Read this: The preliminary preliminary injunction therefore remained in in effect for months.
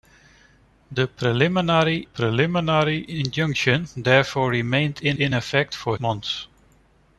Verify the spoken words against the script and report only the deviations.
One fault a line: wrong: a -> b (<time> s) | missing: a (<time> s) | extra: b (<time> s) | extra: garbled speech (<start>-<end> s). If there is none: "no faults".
no faults